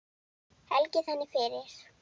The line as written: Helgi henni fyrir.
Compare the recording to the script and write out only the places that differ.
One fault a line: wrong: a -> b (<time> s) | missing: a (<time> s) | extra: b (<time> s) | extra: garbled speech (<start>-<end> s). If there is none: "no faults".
no faults